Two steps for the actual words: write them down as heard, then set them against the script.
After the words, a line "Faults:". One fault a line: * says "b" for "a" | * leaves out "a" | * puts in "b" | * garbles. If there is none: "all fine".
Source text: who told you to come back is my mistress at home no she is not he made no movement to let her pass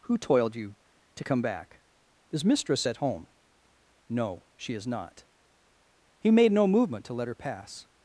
who toiled you to come back is mistress at home no she is not he made no movement to let her pass
Faults:
* says "toiled" for "told"
* leaves out "my"